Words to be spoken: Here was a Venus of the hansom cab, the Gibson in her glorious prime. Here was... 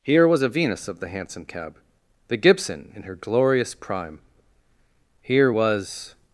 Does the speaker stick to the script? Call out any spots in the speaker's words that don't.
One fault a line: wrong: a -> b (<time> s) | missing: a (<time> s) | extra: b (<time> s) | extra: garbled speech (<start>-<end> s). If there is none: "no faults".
no faults